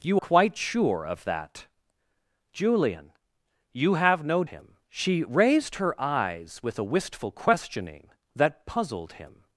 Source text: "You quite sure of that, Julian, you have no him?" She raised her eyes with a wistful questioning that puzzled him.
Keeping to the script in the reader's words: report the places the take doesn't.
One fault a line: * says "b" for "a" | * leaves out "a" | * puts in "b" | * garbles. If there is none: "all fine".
all fine